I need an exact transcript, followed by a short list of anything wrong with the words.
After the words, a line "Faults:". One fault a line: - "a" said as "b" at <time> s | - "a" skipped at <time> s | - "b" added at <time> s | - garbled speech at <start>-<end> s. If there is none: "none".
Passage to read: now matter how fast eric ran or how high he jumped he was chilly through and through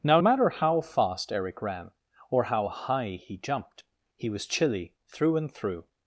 now matter how fast eric ran or how high he jumped he was chilly through and through
Faults:
none